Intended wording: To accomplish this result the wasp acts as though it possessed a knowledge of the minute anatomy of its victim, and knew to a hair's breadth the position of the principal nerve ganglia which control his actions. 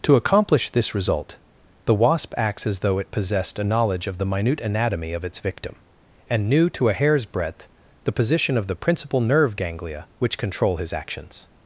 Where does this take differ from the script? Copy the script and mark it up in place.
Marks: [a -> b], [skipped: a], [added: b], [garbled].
To accomplish this result the wasp acts as though it possessed a knowledge of the minute anatomy of its victim, and knew to a hair's breadth the position of the principal nerve ganglia which control his actions.